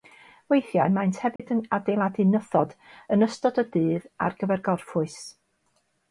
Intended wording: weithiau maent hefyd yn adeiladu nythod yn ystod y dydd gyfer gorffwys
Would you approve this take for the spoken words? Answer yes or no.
no